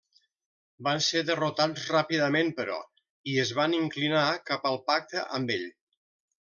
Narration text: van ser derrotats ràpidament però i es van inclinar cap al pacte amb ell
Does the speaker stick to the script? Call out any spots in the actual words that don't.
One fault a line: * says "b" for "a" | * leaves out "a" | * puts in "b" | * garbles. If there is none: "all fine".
all fine